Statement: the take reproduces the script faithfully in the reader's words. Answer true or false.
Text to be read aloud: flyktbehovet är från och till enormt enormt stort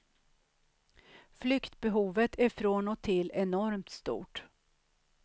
false